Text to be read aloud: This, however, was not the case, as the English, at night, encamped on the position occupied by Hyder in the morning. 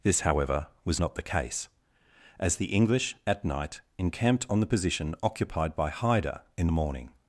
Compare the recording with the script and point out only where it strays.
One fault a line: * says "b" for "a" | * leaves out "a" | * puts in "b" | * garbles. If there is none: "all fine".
all fine